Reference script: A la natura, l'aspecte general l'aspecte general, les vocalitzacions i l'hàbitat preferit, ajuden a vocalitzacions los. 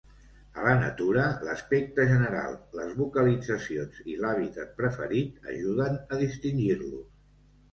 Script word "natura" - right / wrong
right